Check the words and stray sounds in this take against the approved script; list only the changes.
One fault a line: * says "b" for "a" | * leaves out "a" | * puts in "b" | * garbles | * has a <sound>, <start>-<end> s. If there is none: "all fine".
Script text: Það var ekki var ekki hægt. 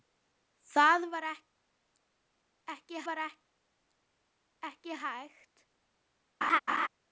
* has a laugh, 6.4-6.9 s